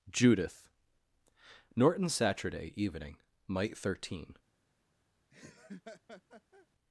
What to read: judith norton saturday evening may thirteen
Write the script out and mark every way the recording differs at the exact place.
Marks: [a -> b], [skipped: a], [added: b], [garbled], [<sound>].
judith norton saturday evening [may -> might] thirteen [laugh]